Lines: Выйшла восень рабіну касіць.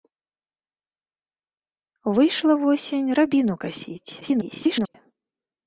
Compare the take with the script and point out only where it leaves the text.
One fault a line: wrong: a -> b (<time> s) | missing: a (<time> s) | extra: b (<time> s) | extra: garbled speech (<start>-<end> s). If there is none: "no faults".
extra: garbled speech (4.2-5.0 s)